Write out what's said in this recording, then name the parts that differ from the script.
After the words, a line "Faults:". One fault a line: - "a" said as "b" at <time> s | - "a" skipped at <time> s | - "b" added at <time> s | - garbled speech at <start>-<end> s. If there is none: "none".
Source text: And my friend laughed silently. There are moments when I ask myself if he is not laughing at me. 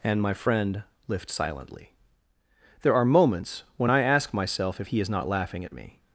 And my friend lift silently. There are moments when I ask myself if he is not laughing at me.
Faults:
- "laughed" said as "lift" at 1.1 s